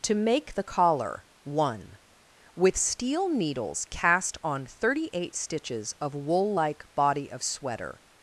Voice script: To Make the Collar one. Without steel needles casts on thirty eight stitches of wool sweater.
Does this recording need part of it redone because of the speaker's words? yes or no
yes